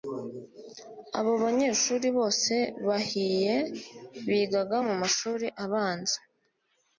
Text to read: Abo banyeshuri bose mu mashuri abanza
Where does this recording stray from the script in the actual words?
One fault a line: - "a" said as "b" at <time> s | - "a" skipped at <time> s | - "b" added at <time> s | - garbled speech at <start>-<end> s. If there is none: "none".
- "bahiye bigaga" added at 2.9 s